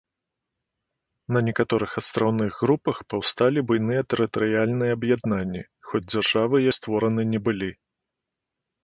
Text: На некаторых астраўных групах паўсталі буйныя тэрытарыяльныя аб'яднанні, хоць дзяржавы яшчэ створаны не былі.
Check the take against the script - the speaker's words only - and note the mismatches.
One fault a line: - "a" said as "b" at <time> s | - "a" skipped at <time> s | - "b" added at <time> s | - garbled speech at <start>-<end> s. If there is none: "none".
- "яшчэ" skipped at 6.7 s